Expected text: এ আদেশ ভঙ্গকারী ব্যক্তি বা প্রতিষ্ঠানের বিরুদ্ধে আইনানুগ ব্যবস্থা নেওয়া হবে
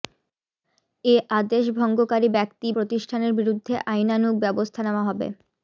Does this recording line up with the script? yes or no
no